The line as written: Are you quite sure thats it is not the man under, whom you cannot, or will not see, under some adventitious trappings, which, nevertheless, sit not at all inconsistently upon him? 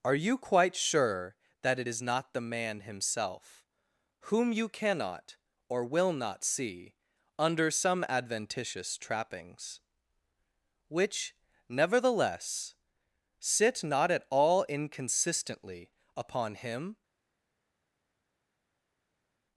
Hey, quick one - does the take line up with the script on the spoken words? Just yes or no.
no